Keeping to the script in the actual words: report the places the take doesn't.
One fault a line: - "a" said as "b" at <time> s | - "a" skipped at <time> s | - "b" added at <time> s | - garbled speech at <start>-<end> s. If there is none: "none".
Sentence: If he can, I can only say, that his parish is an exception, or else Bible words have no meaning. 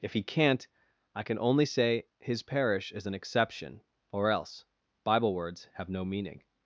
- "can" said as "can't" at 0.2 s
- "that" skipped at 2.0 s